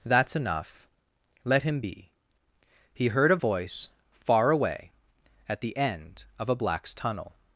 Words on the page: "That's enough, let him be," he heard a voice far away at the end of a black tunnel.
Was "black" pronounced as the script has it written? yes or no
no